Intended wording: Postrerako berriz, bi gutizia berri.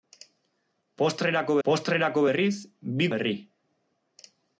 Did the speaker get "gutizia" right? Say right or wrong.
wrong